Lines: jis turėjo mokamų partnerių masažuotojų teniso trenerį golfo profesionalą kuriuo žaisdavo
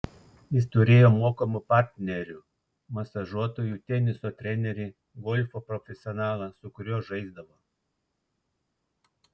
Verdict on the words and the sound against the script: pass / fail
fail